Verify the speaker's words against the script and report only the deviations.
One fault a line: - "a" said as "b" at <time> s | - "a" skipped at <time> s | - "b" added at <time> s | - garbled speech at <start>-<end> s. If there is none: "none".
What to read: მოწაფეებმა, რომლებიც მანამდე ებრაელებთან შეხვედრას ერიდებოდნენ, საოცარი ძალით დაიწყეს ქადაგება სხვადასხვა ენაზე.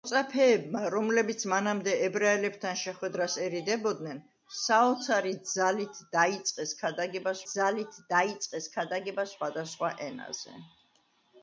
- "ძალით დაიწყეს ქადაგება" added at 7.5 s